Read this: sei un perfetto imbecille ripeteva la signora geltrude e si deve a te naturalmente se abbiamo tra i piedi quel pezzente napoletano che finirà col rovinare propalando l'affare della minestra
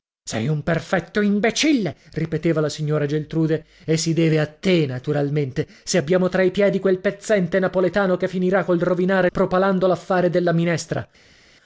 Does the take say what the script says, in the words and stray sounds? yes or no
yes